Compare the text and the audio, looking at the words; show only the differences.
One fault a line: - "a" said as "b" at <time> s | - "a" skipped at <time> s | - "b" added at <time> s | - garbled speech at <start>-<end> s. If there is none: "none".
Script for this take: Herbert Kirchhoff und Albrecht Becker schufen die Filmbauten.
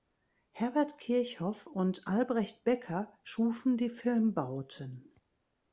none